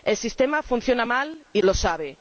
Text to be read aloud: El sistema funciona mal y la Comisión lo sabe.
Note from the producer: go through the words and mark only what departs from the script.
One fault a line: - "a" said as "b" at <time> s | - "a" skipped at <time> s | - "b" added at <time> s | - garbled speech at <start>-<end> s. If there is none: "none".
- "la Comisión" skipped at 1.6 s